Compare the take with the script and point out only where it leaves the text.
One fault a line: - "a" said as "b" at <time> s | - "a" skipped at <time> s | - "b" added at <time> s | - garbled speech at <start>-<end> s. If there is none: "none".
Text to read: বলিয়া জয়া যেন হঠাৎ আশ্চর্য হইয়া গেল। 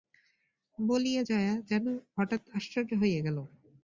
none